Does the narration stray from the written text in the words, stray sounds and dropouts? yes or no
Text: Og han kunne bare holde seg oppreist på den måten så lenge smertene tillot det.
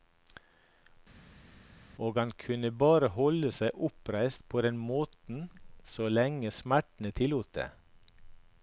no